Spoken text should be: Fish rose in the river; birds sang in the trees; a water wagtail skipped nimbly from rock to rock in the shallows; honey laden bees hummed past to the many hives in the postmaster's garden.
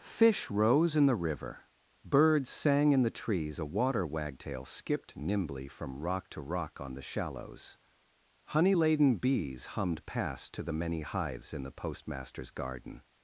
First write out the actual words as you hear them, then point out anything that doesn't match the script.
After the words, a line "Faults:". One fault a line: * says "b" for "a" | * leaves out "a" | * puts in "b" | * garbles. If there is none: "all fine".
Fish rose in the river; birds sang in the trees; a water wagtail skipped nimbly from rock to rock on the shallows; honey laden bees hummed past to the many hives in the postmaster's garden.
Faults:
* says "on" for "in"